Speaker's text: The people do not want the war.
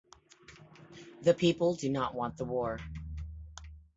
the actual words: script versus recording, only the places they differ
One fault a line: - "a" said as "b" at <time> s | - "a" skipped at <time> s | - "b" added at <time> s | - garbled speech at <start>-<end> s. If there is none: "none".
none